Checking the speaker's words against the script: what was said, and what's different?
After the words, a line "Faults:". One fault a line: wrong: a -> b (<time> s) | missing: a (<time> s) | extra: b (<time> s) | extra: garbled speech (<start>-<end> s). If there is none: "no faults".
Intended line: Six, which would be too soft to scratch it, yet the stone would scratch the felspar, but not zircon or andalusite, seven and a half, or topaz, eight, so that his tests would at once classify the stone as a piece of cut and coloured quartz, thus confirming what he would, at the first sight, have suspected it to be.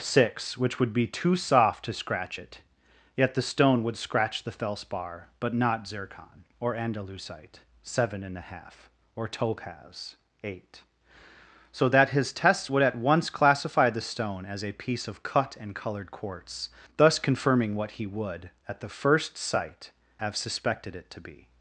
Six, which would be too soft to scratch it, yet the stone would scratch the felspar, but not zircon or andalusite, seven and a half, or topaz, eight, so that his tests would at once classify the stone as a piece of cut and coloured quartz, thus confirming what he would, at the first sight, have suspected it to be.
Faults:
no faults